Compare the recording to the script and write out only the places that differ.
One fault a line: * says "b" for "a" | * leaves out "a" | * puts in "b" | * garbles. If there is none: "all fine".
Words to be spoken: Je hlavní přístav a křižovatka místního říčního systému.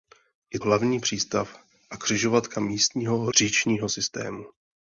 all fine